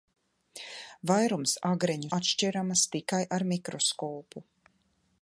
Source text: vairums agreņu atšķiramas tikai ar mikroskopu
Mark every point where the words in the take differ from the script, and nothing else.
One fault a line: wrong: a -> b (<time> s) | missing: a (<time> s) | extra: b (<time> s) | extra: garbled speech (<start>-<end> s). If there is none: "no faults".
no faults